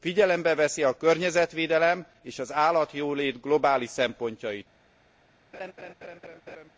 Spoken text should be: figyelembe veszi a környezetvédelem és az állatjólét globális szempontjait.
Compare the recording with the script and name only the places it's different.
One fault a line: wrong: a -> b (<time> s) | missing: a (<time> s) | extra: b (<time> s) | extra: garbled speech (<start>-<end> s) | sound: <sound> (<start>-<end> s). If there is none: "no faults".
sound: laugh (5.5-6.7 s)